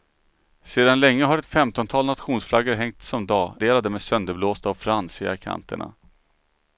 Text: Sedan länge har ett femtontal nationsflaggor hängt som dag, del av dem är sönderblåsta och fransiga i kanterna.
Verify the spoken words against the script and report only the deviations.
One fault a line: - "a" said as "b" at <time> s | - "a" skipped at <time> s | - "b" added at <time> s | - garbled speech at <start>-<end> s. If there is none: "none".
none